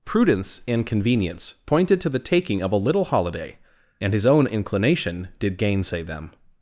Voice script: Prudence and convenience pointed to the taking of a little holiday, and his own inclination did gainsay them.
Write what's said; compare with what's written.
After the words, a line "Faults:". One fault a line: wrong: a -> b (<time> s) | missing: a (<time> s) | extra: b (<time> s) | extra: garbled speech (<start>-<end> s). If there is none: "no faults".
Prudence and convenience pointed to the taking of a little holiday, and his own inclination did gainsay them.
Faults:
no faults